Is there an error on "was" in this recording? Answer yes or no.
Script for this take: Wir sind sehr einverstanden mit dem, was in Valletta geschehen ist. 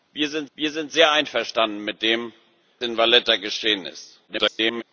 yes